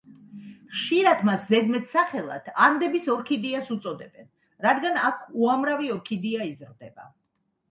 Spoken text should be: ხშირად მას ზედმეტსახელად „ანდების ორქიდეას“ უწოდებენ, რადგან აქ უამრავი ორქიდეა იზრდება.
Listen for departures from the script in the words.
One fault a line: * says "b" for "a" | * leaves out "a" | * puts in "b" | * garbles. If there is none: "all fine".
all fine